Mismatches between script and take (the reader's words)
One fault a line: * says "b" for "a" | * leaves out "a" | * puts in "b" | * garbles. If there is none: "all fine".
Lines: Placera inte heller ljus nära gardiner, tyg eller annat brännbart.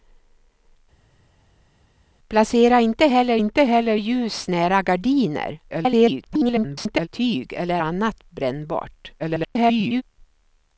* puts in "inte heller"
* garbles
* garbles